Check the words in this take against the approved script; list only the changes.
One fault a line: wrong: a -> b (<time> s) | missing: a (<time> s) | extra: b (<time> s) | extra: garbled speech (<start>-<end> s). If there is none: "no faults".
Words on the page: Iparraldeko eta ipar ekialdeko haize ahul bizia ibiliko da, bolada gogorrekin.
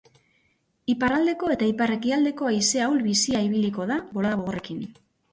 no faults